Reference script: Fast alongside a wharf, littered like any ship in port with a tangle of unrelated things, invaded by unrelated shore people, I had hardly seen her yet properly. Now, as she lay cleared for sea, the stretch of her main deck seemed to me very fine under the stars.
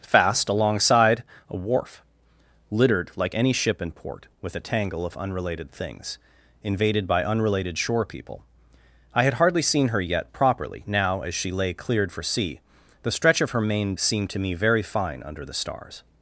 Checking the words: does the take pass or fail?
fail